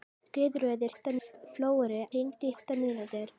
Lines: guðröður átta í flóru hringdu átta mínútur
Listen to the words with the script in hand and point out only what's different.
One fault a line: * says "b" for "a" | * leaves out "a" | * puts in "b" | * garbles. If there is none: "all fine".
all fine